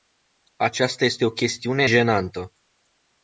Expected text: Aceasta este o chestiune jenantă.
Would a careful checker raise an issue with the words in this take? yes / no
no